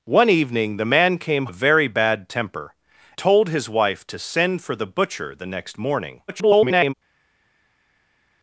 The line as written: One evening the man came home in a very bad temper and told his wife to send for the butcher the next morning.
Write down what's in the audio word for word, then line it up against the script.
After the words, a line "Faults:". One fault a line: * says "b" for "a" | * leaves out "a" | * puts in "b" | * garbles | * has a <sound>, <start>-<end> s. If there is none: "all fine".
One evening the man came a very bad temper told his wife to send for the butcher the next morning. [garbled]
Faults:
* leaves out "home in"
* leaves out "and"
* garbles